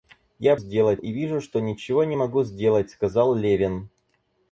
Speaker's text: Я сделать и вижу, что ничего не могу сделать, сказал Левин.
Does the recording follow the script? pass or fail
pass